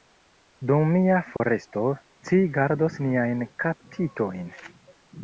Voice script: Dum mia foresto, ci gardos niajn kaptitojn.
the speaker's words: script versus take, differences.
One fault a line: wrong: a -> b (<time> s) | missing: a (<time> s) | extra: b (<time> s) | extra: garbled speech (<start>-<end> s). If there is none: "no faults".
no faults